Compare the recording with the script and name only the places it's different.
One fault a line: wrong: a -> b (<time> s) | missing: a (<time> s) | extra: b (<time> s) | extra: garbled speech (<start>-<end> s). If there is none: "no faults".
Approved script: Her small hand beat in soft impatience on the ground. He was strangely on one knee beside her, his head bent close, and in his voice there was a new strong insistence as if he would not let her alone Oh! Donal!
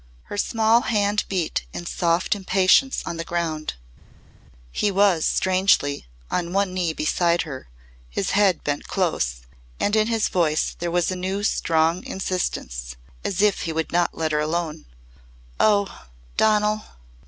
no faults